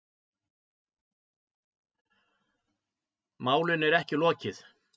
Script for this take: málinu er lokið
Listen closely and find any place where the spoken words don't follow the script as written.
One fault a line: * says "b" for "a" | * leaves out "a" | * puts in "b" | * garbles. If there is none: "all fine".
* puts in "ekki"